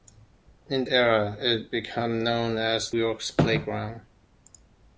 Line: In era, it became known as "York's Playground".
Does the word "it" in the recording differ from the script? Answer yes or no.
no